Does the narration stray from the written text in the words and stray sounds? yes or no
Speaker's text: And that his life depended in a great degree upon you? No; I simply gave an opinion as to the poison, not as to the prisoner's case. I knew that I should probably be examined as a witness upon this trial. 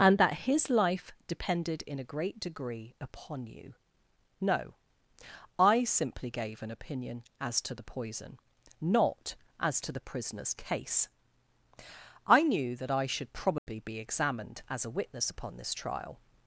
yes